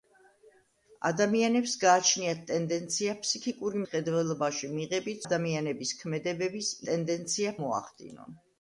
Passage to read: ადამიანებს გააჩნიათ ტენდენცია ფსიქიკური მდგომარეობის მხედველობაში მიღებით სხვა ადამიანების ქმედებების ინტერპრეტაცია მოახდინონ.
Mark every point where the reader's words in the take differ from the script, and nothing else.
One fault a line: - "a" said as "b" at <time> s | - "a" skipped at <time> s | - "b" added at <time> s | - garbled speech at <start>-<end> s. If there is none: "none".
- "მდგომარეობის" skipped at 3.8 s
- "სხვა" skipped at 5.2 s
- "ინტერპრეტაცია" said as "ტენდენცია" at 6.9 s